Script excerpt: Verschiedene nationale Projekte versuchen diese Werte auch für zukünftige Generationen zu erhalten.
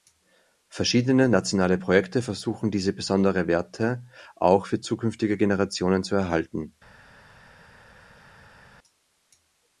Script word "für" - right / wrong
right